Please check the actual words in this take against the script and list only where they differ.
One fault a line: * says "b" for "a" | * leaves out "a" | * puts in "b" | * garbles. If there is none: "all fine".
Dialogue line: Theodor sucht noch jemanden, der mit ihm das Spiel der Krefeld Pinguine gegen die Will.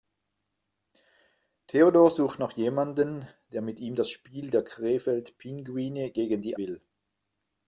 all fine